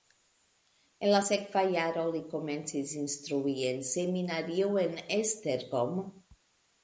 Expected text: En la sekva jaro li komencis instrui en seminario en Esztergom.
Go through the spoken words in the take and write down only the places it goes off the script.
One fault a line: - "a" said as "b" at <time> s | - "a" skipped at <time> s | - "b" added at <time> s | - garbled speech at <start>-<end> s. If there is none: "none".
none